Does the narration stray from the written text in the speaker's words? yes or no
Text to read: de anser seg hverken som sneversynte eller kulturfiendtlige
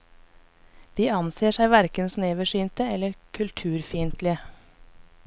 yes